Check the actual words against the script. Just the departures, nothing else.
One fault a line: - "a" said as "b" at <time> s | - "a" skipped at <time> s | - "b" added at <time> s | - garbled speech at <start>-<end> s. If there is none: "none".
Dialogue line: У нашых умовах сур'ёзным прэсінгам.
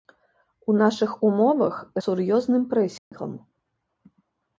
none